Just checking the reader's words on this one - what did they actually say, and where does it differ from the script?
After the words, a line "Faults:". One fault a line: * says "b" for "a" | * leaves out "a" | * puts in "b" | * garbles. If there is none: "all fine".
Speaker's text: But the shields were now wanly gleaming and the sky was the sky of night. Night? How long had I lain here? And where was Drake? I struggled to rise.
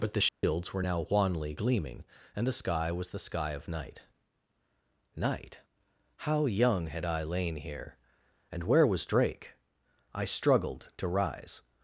But the shields were now wanly gleaming and the sky was the sky of night. Night? How young had I lain here? And where was Drake? I struggled to rise.
Faults:
* says "young" for "long"